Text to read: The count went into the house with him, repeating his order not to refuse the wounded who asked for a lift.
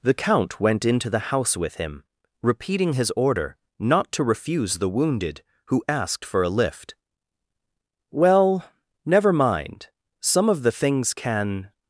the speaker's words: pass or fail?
fail